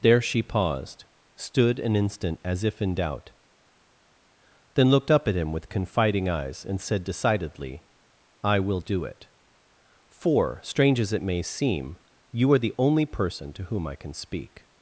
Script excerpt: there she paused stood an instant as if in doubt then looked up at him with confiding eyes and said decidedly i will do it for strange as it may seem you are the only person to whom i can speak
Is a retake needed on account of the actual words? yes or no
no